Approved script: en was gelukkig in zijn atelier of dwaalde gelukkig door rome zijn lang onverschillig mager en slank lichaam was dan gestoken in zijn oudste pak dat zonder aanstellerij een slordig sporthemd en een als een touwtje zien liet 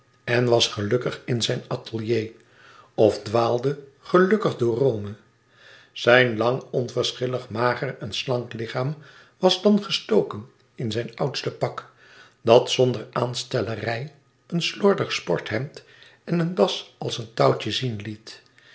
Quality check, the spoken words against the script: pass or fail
fail